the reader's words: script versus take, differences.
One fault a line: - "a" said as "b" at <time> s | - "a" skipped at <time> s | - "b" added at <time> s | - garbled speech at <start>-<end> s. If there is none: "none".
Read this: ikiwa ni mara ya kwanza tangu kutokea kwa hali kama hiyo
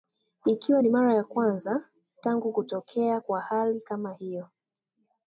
none